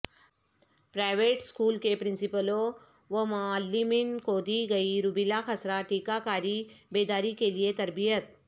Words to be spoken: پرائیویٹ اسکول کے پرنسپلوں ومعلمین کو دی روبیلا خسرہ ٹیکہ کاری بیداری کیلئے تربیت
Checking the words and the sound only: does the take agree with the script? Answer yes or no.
no